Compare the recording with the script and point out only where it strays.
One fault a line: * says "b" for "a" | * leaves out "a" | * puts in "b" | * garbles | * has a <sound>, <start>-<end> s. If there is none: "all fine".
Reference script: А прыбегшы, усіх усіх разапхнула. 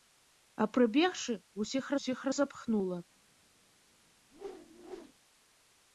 * has a whoosh, 4.3-5.1 s